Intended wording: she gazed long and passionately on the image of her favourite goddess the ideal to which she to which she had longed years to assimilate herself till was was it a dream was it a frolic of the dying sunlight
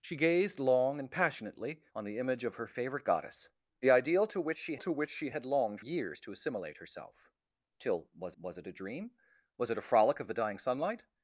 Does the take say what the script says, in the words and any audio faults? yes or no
yes